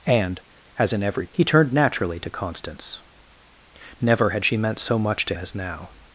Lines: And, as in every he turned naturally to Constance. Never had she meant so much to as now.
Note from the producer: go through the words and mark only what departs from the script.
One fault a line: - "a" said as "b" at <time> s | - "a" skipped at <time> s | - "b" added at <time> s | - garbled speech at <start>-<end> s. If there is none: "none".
none